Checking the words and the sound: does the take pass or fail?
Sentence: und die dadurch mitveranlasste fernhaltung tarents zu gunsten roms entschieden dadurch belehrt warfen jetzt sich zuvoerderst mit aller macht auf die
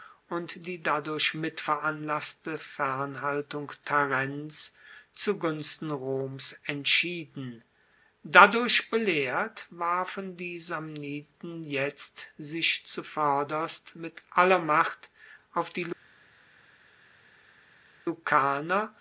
fail